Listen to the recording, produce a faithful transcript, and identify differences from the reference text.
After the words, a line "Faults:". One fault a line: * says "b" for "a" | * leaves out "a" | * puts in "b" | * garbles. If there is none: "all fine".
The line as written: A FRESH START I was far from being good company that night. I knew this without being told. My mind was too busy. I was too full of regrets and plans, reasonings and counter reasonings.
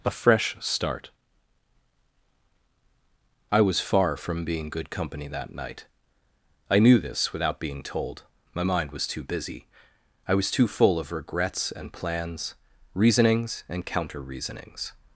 A FRESH START I was far from being good company that night. I knew this without being told. My mind was too busy. I was too full of regrets and plans, reasonings and counter reasonings.
Faults:
all fine